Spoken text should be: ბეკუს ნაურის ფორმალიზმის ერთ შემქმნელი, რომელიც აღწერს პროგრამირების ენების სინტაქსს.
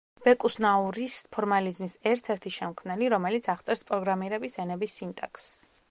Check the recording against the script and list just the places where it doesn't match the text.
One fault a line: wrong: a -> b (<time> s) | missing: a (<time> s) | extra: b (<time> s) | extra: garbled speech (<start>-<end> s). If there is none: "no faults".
extra: ერთი (2.4 s)